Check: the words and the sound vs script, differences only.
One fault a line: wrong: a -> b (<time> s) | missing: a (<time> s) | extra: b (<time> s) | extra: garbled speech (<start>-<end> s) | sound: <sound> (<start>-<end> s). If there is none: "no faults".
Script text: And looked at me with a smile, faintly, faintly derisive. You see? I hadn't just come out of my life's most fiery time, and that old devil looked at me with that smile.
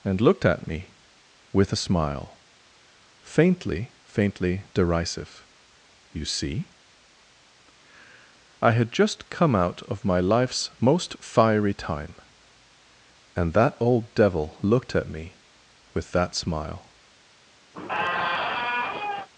wrong: hadn't -> had (8.7 s)
sound: squeak (17.7-19.3 s)